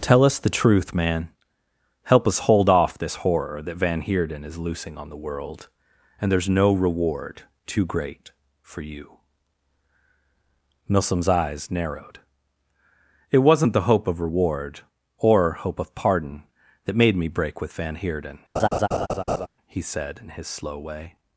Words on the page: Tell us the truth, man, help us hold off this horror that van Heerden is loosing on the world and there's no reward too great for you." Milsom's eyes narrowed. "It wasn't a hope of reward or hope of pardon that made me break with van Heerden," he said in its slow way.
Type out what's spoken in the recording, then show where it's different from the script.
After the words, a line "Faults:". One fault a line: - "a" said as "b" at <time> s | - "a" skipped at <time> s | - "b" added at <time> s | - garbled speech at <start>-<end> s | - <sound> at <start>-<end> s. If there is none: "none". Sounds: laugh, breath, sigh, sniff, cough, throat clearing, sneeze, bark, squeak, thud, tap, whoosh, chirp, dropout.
Tell us the truth, man, help us hold off this horror that van Heerden is loosing on the world and there's no reward too great for you." Milsom's eyes narrowed. "It wasn't the hope of reward or hope of pardon that made me break with van Heerden," he said in his slow way.
Faults:
- "a" said as "the" at 13.7 s
- laugh at 18.6-19.5 s
- "its" said as "his" at 20.3 s